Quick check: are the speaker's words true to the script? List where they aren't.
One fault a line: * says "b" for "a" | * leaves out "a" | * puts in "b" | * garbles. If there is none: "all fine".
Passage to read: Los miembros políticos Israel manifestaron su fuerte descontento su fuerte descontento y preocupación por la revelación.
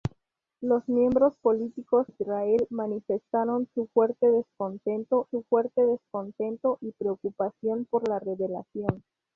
all fine